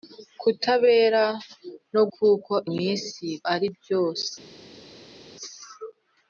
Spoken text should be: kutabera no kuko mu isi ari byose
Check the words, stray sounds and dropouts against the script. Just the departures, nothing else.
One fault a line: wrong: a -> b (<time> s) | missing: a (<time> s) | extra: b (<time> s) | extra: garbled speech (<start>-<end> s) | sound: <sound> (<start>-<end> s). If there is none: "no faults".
no faults